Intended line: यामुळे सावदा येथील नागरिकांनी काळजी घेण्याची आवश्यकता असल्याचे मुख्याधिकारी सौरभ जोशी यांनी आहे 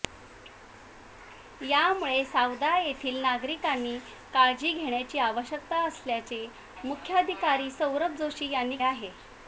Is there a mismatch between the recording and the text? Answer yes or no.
no